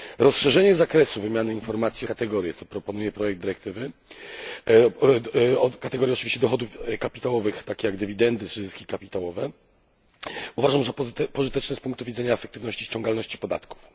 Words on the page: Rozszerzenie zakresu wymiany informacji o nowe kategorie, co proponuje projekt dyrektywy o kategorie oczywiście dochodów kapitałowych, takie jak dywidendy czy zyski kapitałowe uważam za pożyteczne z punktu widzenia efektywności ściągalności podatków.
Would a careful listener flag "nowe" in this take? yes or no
yes